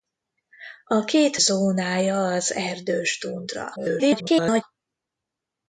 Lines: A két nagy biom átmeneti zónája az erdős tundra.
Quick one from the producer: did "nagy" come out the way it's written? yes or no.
no